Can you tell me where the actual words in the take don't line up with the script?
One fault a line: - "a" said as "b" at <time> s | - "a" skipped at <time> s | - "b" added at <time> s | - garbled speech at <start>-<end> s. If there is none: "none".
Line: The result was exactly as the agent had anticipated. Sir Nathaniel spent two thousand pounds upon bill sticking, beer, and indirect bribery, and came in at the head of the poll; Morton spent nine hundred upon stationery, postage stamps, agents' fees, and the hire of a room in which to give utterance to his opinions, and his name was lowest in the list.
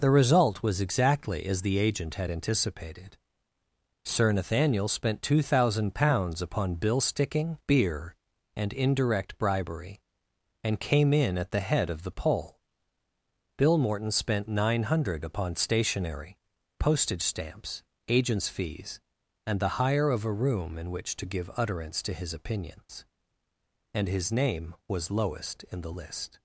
- "bill" added at 13.6 s